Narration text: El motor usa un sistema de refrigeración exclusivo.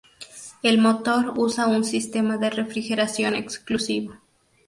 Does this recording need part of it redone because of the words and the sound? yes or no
no